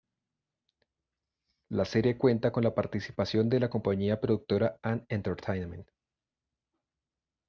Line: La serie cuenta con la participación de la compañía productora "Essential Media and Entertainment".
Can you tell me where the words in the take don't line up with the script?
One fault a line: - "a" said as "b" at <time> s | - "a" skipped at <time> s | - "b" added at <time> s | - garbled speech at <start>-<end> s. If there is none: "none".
- "Essential Media" skipped at 4.8 s